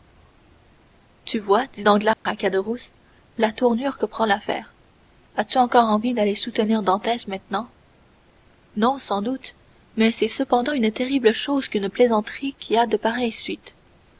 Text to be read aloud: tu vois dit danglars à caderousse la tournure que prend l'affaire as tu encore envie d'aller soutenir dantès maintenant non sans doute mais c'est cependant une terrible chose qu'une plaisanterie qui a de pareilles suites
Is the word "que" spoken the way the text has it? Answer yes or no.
yes